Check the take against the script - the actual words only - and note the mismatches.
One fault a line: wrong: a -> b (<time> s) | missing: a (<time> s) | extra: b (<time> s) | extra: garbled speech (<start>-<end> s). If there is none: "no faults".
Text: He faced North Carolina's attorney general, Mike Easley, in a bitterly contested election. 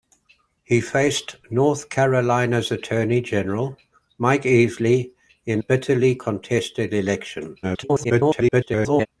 missing: a (5.6 s)
extra: garbled speech (7.6-9.1 s)